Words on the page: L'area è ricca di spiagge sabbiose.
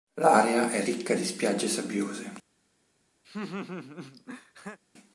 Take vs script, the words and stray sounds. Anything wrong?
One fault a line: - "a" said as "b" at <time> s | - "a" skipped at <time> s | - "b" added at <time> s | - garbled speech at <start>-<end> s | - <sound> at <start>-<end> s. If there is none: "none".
- laugh at 3.2-4.8 s